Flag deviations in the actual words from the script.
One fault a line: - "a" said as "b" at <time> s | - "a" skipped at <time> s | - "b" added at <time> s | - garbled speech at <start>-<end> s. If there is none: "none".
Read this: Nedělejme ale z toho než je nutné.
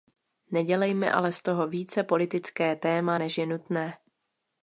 - "více politické téma" added at 1.7 s